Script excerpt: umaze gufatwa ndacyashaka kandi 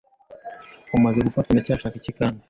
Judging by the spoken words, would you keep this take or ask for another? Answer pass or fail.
fail